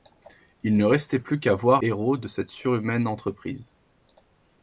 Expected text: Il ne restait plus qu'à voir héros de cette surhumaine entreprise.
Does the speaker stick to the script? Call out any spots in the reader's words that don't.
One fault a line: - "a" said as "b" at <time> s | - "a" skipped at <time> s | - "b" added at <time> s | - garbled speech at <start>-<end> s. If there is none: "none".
none